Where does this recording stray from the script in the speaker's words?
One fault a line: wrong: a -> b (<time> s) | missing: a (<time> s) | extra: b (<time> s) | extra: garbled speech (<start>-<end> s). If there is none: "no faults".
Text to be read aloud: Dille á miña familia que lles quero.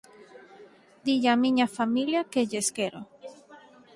no faults